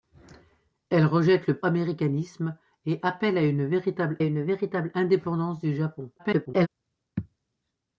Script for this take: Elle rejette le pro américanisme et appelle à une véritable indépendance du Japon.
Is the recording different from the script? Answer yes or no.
yes